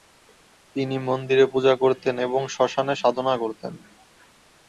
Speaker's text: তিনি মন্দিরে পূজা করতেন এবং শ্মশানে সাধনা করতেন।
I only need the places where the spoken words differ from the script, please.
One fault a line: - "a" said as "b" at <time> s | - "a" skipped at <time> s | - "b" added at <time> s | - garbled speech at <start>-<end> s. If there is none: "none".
none